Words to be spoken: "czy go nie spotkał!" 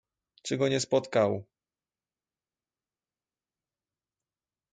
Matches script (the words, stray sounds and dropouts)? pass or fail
pass